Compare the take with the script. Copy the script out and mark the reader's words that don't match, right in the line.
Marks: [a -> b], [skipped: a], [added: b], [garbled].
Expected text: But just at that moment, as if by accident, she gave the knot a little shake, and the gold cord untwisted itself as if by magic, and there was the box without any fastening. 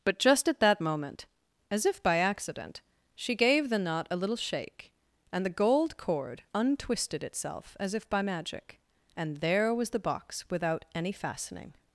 But just at that moment, as if by accident, she gave the knot a little shake, and the gold cord untwisted itself as if by magic, and there was the box without any fastening.